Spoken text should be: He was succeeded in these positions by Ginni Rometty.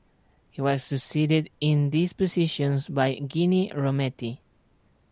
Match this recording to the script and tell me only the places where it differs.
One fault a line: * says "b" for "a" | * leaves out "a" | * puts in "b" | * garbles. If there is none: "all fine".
all fine